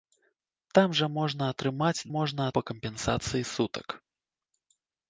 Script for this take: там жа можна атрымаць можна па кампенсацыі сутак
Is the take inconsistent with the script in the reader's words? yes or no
no